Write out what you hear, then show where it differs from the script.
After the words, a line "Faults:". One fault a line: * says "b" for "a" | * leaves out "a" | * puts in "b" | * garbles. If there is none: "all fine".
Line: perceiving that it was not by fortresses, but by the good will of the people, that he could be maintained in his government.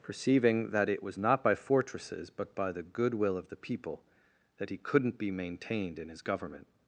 perceiving that it was not by fortresses, but by the good will of the people, that he couldn't be maintained in his government.
Faults:
* says "couldn't" for "could"